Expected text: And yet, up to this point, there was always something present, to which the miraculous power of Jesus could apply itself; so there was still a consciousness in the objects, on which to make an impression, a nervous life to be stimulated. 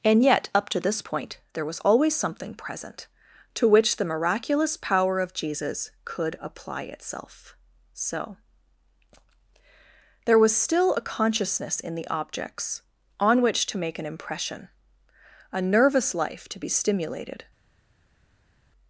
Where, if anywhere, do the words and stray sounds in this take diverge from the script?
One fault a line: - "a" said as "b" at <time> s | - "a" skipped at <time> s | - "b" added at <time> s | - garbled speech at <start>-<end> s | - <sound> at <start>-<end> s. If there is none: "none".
none